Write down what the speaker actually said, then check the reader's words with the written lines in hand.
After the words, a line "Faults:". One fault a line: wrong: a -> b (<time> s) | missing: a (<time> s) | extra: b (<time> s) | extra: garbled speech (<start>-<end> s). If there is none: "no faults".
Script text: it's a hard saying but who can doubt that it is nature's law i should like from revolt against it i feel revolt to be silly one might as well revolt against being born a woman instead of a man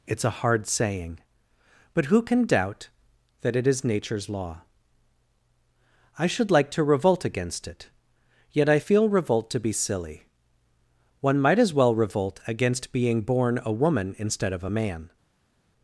it's a hard saying but who can doubt that it is nature's law i should like to revolt against it yet i feel revolt to be silly one might as well revolt against being born a woman instead of a man
Faults:
wrong: from -> to (6.7 s)
extra: yet (8.5 s)